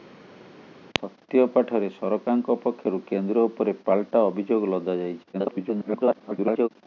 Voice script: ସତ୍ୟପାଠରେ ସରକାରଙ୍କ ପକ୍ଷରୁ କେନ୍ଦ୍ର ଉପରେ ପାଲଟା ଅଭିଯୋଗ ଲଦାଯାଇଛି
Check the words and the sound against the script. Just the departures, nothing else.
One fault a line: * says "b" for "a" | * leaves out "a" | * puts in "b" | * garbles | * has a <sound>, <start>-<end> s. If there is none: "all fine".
* garbles